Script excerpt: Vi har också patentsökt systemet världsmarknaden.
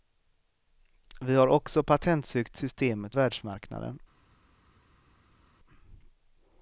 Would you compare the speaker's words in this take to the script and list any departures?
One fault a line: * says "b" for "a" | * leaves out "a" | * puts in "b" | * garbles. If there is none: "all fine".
all fine